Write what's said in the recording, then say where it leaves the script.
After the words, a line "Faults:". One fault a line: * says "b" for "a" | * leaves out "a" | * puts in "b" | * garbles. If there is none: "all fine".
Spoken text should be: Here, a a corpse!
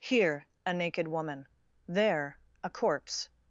Here, a naked woman; there, a corpse!
Faults:
* puts in "naked woman there"